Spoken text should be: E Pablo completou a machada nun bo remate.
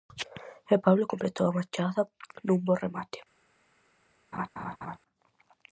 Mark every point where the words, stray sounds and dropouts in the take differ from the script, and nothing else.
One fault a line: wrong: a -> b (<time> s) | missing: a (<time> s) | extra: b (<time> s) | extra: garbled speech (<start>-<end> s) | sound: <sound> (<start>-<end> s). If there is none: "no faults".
sound: laugh (4.3-5.0 s)